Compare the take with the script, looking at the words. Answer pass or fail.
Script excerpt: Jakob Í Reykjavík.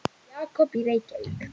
pass